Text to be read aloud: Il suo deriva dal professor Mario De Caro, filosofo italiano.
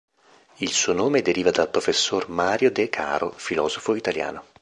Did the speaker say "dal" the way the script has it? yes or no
yes